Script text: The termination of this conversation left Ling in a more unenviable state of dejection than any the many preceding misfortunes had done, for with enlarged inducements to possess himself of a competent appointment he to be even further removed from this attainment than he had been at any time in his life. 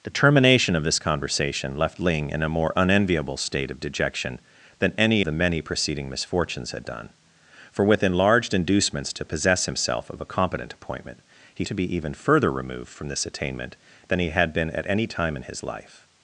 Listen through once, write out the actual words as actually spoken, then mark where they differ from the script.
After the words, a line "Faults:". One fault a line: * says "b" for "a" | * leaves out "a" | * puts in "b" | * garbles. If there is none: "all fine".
The termination of this conversation left Ling in a more unenviable state of dejection than any the many preceding misfortunes had done, for with enlarged inducements to possess himself of a competent appointment he to be even further removed from this attainment than he had been at any time in his life.
Faults:
all fine